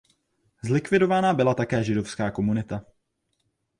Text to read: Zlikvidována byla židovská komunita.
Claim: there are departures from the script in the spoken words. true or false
true